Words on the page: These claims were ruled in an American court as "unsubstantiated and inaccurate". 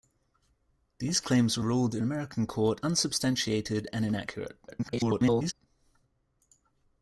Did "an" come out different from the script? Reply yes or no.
yes